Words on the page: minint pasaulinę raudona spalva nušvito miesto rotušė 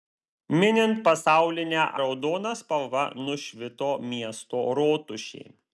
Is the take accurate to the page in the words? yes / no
yes